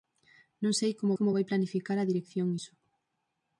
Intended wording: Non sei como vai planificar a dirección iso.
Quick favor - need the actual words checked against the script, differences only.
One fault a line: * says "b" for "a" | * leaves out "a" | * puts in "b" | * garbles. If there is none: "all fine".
* puts in "como"